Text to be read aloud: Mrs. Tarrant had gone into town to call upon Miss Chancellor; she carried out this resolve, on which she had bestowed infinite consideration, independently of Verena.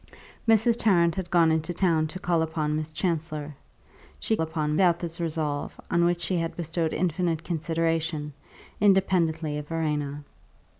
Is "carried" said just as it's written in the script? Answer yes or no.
no